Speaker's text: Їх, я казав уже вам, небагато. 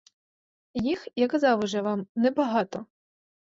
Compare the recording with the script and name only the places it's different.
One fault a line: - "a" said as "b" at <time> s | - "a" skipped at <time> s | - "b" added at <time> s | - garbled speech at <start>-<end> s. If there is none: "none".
none